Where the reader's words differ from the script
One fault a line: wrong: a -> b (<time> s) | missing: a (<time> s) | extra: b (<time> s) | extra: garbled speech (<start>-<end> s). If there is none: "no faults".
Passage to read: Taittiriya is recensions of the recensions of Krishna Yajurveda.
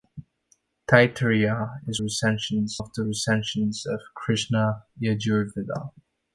no faults